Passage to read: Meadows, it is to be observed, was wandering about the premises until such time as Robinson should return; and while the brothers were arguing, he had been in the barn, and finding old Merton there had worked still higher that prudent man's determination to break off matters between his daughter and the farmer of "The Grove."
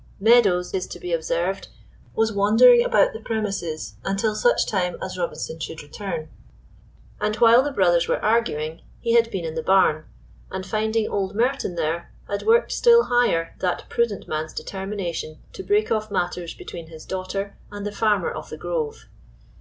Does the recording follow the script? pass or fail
fail